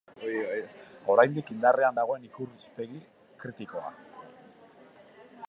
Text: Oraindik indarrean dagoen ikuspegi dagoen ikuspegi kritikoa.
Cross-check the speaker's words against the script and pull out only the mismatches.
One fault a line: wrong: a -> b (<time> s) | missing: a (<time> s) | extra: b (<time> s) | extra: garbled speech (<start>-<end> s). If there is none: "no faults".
missing: dagoen ikuspegi (3.0 s)